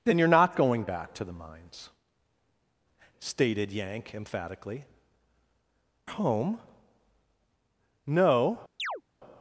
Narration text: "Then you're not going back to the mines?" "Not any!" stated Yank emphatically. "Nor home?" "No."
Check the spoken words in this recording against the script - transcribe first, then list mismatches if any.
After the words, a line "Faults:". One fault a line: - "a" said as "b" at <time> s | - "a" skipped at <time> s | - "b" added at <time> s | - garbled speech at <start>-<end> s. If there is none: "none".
"Then you're not going back to the mines!" "Stated Yank emphatically. "Home?" "No."
Faults:
- "Not any" skipped at 1.9 s
- "Nor" skipped at 4.8 s